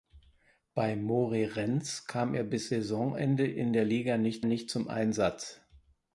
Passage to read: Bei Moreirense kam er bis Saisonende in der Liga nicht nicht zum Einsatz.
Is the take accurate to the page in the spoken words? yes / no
yes